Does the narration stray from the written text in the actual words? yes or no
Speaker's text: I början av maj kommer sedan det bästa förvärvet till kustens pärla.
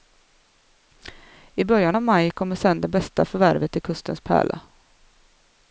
no